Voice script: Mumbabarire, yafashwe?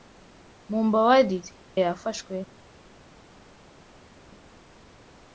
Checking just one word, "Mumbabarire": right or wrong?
right